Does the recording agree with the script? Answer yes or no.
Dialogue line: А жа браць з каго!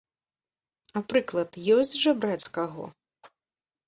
no